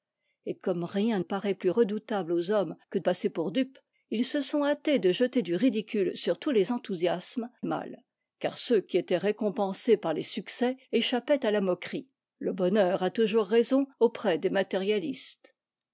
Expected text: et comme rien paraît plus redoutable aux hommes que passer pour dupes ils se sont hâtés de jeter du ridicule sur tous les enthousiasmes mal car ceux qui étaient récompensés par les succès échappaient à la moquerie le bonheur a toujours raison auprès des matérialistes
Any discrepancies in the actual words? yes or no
no